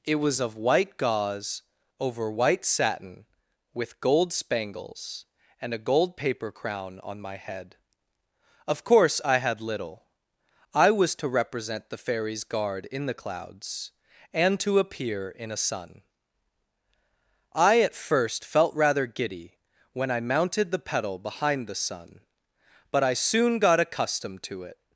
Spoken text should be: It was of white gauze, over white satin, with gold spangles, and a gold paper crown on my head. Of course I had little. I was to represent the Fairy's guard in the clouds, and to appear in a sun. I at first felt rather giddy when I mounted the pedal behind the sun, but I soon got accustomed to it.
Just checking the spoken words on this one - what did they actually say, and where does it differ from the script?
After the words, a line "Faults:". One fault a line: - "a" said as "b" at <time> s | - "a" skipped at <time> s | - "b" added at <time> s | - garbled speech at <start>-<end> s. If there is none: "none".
It was of white gauze, over white satin, with gold spangles, and a gold paper crown on my head. Of course I had little. I was to represent the Fairy's guard in the clouds, and to appear in a sun. I at first felt rather giddy when I mounted the pedal behind the sun, but I soon got accustomed to it.
Faults:
none